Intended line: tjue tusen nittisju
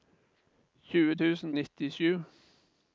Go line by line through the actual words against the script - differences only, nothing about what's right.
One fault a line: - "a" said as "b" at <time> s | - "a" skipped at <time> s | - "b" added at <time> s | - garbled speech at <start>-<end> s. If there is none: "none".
none